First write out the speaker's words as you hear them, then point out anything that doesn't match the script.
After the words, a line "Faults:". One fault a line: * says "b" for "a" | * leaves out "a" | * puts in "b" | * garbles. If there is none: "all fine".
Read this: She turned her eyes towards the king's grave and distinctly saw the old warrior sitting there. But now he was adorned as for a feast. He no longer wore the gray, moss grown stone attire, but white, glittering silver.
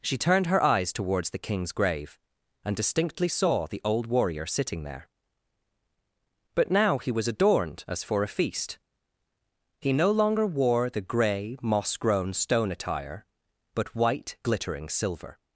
She turned her eyes towards the king's grave and distinctly saw the old warrior sitting there. But now he was adorned as for a feast. He no longer wore the gray, moss grown stone attire, but white, glittering silver.
Faults:
all fine